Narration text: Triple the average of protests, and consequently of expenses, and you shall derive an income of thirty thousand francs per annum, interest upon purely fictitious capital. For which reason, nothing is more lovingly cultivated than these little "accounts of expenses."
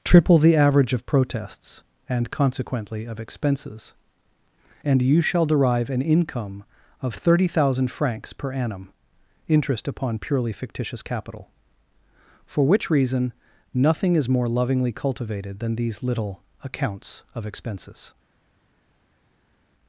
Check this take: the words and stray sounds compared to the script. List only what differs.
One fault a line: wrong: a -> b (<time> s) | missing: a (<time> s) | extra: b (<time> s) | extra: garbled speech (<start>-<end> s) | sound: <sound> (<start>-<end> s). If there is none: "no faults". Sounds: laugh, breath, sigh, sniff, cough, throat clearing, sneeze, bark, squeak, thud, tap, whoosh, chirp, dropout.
no faults